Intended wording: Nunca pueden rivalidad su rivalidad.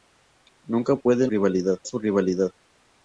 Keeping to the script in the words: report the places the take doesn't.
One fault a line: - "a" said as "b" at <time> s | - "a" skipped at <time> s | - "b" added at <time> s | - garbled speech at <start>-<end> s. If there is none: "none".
none